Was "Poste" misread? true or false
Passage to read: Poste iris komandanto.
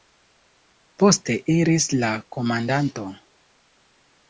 false